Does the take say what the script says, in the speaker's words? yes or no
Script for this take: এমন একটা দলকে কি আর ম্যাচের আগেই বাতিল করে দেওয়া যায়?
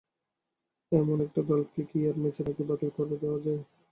yes